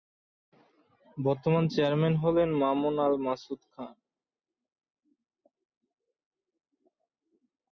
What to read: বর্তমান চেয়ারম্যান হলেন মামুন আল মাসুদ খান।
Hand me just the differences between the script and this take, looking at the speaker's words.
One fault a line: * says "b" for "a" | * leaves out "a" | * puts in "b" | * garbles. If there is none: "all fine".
all fine